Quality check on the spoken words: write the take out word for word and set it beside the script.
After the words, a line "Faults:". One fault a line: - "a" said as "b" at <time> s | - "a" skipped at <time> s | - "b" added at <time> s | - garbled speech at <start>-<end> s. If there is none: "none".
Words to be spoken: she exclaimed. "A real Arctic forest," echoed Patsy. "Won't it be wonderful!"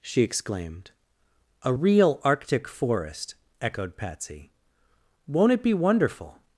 she exclaimed. "A real Arctic forest," echoed Patsy. "Won't it be wonderful!"
Faults:
none